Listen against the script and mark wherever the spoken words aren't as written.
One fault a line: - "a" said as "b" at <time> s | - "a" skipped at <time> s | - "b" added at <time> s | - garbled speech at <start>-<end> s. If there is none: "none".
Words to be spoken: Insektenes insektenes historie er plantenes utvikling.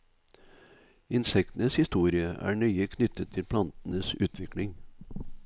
- "insektenes" skipped at 1.8 s
- "nøye knyttet til" added at 2.5 s